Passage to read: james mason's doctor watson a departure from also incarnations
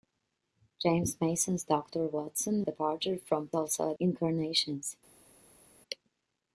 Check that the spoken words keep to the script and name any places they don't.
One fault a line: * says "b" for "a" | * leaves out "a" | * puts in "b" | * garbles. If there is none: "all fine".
all fine